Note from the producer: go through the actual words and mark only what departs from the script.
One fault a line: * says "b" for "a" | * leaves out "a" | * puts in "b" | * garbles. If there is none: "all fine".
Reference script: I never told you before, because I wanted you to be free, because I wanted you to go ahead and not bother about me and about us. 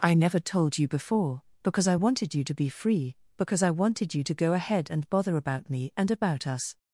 * leaves out "not"